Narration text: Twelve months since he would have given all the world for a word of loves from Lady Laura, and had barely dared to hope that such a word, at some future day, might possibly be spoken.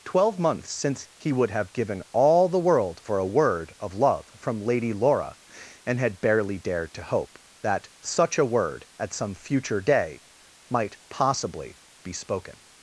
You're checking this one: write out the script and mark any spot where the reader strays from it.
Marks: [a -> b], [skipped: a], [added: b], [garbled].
Twelve months since he would have given all the world for a word of [loves -> love] from Lady Laura, and had barely dared to hope that such a word, at some future day, might possibly be spoken.